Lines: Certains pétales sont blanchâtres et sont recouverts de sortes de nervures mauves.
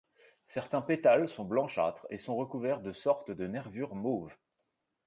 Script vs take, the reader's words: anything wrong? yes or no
no